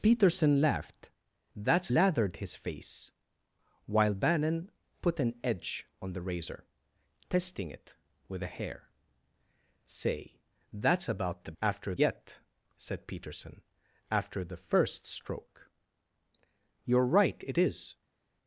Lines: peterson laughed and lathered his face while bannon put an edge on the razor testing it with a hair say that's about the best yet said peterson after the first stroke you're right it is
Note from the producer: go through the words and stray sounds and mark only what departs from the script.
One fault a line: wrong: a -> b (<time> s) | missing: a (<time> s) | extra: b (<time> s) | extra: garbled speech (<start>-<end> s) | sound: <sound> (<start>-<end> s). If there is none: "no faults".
wrong: and -> that's (1.5 s)
wrong: best -> after (11.6 s)